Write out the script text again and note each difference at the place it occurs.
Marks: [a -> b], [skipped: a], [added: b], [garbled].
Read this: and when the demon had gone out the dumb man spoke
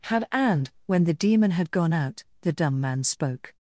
[added: had] and when the demon had gone out the dumb man spoke